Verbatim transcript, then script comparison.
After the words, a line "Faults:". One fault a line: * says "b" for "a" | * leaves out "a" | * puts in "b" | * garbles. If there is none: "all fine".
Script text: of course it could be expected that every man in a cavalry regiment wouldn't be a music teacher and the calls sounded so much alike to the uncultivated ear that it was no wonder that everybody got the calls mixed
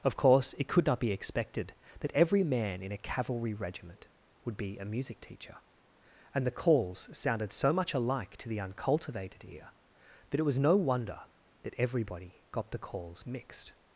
of course it could not be expected that every man in a cavalry regiment would be a music teacher and the calls sounded so much alike to the uncultivated ear that it was no wonder that everybody got the calls mixed
Faults:
* puts in "not"
* says "would" for "wouldn't"